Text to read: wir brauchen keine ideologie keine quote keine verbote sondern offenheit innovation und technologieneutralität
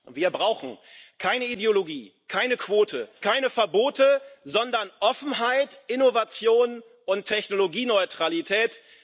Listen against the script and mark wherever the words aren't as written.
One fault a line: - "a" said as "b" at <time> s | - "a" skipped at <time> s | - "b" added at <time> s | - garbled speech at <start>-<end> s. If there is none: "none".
none